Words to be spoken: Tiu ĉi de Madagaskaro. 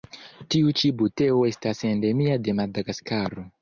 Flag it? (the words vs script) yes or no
yes